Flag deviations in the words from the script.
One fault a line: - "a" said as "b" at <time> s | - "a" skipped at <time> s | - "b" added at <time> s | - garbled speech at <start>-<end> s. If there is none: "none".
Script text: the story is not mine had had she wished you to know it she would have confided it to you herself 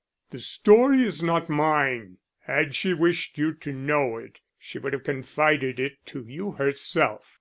- "had" skipped at 2.7 s